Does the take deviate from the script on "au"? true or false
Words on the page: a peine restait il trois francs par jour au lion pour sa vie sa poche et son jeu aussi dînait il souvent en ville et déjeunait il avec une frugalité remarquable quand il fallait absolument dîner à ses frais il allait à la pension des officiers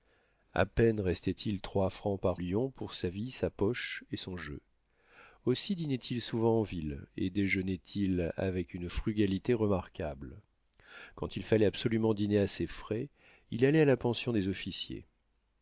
true